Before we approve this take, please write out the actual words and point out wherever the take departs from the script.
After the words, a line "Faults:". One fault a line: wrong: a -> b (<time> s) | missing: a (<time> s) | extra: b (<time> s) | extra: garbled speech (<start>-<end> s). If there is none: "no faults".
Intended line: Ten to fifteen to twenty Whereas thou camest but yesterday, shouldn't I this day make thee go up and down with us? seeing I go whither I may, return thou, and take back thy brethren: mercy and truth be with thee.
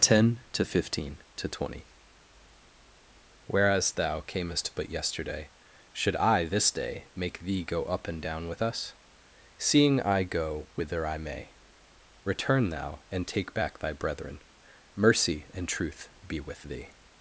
Ten to fifteen to twenty Whereas thou camest but yesterday, should I this day make thee go up and down with us? seeing I go whither I may, return thou, and take back thy brethren: mercy and truth be with thee.
Faults:
wrong: shouldn't -> should (5.9 s)